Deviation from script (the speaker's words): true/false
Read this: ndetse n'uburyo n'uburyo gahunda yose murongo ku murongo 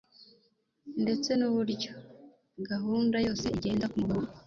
true